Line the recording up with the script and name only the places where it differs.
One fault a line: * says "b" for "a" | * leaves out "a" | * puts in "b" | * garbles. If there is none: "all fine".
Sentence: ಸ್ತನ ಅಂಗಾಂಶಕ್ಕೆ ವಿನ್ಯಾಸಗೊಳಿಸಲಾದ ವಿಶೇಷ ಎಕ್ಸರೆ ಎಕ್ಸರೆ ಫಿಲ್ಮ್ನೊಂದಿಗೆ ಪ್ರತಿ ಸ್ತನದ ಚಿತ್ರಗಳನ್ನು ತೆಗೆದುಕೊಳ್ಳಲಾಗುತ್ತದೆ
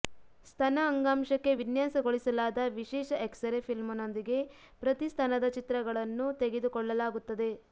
* leaves out "ಎಕ್ಸರೆ"